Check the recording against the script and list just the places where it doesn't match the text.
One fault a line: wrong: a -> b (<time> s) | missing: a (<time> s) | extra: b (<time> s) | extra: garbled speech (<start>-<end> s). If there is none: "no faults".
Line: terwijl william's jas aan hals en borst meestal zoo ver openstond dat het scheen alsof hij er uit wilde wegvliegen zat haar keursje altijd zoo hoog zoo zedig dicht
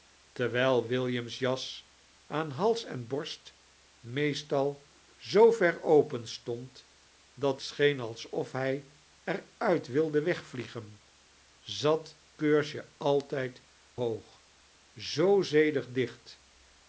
missing: het (7.6 s)
missing: haar (12.2 s)
missing: zoo (13.6 s)